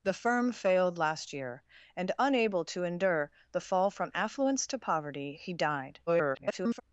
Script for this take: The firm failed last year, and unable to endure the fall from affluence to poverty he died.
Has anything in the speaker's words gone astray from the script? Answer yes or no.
yes